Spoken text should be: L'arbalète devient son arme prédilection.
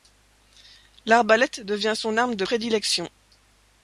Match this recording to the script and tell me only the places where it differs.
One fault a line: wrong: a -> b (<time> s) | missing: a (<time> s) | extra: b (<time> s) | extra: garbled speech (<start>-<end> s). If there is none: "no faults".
extra: de (2.4 s)